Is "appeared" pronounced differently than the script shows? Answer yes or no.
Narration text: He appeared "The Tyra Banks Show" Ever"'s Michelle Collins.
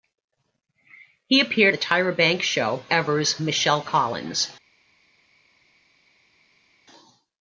no